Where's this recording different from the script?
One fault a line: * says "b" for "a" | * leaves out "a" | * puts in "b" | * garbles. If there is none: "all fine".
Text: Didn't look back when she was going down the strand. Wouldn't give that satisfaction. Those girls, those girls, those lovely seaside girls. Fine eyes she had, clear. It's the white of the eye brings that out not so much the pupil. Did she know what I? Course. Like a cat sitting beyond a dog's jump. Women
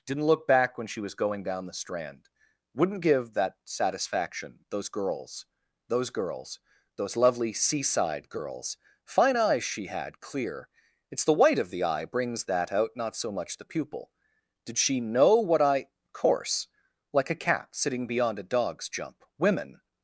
all fine